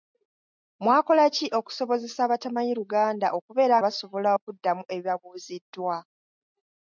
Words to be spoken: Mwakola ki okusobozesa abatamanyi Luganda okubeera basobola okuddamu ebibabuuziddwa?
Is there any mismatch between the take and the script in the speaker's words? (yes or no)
no